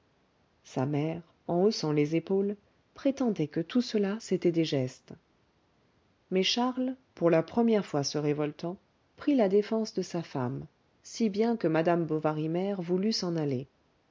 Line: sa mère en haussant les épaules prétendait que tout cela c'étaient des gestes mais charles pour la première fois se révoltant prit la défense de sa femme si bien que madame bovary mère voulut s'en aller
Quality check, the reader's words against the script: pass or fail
pass